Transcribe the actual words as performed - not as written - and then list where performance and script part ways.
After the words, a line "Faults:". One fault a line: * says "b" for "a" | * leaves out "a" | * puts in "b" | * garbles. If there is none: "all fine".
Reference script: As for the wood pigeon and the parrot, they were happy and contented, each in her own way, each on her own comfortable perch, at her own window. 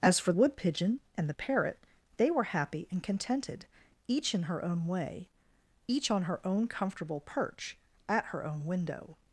As for wood pigeon and the parrot, they were happy and contented, each in her own way, each on her own comfortable perch, at her own window.
Faults:
* leaves out "the"